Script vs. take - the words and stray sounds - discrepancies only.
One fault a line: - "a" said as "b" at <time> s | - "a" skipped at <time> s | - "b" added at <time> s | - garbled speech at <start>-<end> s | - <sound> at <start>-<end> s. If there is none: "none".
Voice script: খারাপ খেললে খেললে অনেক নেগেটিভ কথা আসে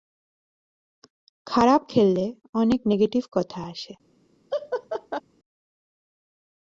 - "খেললে" skipped at 2.2 s
- laugh at 4.5-5.2 s